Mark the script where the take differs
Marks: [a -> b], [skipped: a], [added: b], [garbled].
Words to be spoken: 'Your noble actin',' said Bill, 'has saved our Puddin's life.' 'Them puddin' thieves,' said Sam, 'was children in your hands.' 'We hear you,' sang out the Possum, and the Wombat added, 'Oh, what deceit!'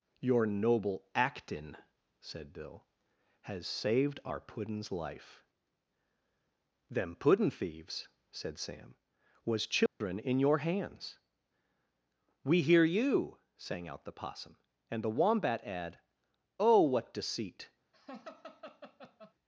'Your noble actin',' said Bill, 'has saved our Puddin's life.' 'Them puddin' thieves,' said Sam, 'was children in your hands.' 'We hear you,' sang out the Possum, and the Wombat [added, -> add] 'Oh, what deceit!'